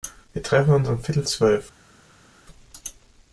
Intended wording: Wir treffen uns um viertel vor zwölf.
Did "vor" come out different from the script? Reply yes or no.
yes